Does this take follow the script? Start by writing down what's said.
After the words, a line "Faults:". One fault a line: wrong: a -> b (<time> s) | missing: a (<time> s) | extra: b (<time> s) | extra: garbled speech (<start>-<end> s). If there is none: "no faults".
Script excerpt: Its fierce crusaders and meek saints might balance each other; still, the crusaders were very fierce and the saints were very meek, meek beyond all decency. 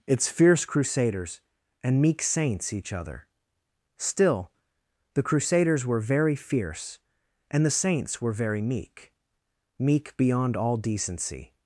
Its fierce crusaders and meek saints each other; still, the crusaders were very fierce and the saints were very meek, meek beyond all decency.
Faults:
missing: might balance (2.7 s)